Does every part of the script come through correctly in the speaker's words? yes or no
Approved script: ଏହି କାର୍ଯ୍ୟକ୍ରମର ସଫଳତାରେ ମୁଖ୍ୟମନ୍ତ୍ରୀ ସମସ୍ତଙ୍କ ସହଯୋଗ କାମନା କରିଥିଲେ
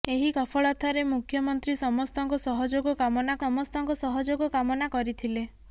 no